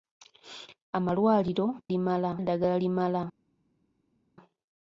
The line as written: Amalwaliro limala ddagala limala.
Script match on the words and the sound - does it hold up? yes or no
yes